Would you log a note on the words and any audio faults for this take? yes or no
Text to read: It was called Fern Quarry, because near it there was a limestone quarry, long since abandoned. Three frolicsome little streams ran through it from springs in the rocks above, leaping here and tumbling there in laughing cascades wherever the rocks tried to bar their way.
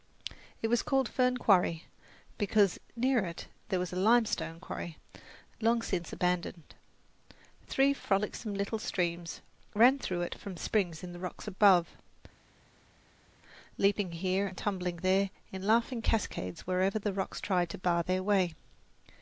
no